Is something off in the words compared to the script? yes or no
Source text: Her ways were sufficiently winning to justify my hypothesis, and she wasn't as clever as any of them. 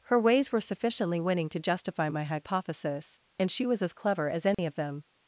yes